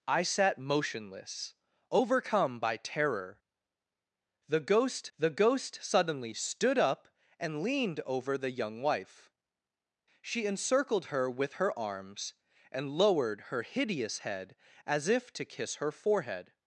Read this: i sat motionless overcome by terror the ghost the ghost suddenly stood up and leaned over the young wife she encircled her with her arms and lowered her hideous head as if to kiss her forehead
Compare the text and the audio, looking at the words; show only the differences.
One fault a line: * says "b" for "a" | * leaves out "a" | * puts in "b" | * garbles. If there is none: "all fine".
all fine